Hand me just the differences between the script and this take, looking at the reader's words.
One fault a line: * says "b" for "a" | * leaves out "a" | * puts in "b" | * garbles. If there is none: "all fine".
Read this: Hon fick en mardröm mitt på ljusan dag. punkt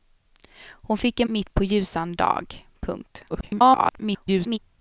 * leaves out "mardröm"
* garbles